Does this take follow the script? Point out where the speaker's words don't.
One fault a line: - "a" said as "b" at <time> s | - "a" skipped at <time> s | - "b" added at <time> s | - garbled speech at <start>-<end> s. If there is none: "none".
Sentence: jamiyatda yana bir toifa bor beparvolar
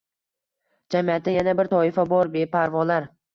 none